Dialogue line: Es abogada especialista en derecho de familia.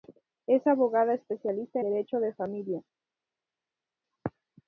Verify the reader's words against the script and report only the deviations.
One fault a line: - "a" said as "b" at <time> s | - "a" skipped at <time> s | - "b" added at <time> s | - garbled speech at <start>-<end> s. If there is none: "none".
- "en" skipped at 1.8 s